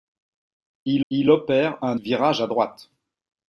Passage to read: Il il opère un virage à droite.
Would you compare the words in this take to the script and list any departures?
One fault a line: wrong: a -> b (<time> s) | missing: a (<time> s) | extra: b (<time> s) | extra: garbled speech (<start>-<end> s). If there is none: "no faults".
no faults